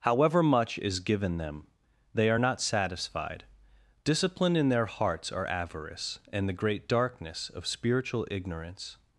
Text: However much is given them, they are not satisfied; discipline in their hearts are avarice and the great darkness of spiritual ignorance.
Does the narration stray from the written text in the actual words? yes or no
no